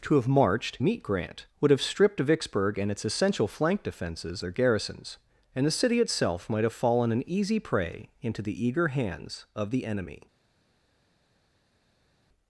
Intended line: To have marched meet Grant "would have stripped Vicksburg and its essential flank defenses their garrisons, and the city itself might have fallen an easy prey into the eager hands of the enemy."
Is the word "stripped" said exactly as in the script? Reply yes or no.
yes